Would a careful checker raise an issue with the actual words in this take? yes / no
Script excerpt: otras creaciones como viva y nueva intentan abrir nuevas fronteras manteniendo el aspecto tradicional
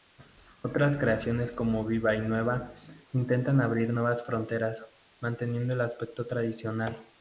no